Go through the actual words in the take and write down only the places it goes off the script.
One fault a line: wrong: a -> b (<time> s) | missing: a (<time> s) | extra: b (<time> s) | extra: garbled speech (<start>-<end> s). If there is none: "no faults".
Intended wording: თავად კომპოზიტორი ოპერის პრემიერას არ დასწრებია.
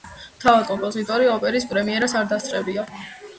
no faults